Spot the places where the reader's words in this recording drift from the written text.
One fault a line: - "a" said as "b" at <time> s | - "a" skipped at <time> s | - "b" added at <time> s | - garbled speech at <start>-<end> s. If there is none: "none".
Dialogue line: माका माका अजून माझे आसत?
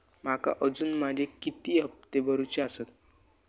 - "माका" skipped at 0.5 s
- "किती हप्ते भरूचे" added at 1.4 s